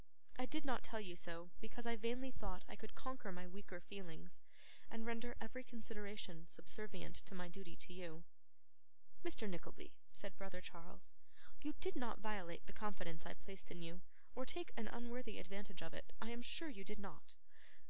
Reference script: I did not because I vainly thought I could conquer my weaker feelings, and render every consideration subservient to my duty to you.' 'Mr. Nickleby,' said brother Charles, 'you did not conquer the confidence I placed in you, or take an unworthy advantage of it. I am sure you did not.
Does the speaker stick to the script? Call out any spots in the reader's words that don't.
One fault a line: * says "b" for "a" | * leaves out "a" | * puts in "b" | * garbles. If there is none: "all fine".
* puts in "tell you so"
* says "violate" for "conquer"